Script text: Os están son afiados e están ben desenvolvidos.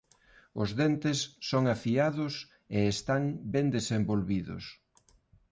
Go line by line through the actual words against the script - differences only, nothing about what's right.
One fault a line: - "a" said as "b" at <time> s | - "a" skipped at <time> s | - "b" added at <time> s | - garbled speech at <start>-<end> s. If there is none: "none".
- "están" said as "dentes" at 0.8 s